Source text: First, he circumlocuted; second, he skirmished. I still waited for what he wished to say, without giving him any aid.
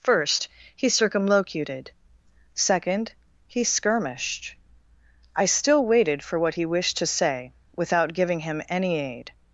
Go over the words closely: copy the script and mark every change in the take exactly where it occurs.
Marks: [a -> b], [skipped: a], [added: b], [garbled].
First, he circumlocuted; second, he skirmished. I still waited for what he wished to say, without giving him any aid.